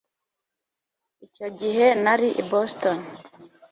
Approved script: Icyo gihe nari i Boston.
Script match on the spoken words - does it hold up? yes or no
yes